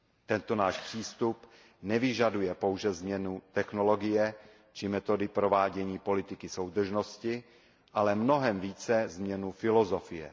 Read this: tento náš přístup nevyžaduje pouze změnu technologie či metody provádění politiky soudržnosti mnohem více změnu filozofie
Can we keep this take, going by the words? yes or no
no